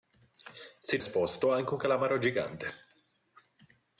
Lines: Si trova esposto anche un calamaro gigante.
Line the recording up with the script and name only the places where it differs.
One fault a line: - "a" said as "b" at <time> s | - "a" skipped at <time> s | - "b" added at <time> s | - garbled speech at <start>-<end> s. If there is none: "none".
- "trova" skipped at 1.0 s